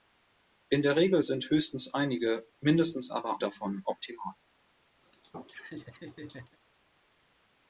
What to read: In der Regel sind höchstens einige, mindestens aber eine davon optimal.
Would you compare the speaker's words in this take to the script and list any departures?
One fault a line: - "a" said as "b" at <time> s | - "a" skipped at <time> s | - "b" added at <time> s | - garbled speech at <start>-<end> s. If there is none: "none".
- "eine" skipped at 3.4 s